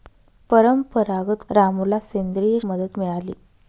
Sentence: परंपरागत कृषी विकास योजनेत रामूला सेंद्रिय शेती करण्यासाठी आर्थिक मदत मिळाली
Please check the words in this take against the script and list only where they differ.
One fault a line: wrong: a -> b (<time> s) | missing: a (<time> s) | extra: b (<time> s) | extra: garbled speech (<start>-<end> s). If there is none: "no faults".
missing: कृषी विकास योजनेत (1.4 s)
missing: शेती करण्यासाठी आर्थिक (2.6 s)